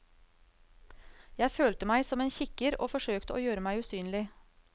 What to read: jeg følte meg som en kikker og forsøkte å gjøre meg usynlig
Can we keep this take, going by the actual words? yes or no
yes